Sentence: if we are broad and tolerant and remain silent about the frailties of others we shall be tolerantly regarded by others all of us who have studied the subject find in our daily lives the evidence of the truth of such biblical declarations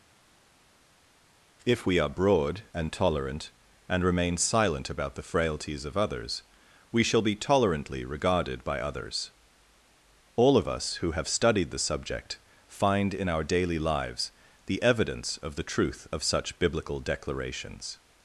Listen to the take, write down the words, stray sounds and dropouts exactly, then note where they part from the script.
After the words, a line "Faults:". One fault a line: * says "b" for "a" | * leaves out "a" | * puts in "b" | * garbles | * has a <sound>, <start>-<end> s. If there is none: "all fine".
if we are broad and tolerant and remain silent about the frailties of others we shall be tolerantly regarded by others all of us who have studied the subject find in our daily lives the evidence of the truth of such biblical declarations
Faults:
all fine